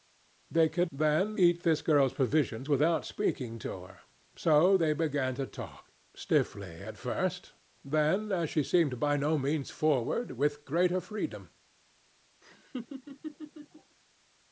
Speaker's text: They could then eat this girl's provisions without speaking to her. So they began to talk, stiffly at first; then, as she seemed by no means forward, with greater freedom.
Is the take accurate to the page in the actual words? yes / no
yes